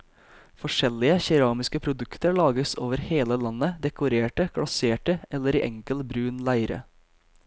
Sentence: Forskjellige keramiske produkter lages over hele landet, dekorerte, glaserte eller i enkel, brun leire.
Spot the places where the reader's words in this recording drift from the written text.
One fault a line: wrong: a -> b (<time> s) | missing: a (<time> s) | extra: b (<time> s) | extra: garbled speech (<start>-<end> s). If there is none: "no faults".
no faults